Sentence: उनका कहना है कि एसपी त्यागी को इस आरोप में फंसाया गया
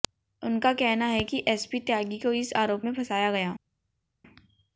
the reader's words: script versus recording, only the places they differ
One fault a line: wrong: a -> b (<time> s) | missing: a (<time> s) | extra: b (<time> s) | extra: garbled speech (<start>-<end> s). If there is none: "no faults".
no faults